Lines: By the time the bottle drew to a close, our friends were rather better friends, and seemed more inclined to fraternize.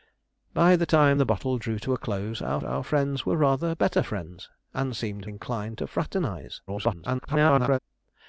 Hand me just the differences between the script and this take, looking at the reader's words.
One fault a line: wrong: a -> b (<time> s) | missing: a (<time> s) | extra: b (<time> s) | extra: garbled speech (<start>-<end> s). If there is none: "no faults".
extra: our (2.6 s)
missing: more (5.3 s)
extra: garbled speech (6.7-7.8 s)